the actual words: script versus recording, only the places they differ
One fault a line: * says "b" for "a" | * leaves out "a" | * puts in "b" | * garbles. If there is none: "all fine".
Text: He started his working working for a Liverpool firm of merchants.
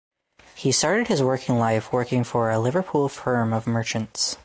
* puts in "life"